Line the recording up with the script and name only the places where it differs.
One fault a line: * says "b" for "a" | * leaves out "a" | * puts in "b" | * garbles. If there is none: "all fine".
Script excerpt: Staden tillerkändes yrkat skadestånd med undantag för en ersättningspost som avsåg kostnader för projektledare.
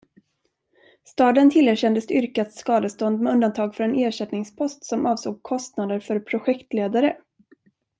all fine